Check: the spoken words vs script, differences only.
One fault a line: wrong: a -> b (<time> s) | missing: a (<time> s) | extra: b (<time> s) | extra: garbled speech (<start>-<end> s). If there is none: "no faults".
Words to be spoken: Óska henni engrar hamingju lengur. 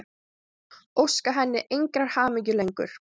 no faults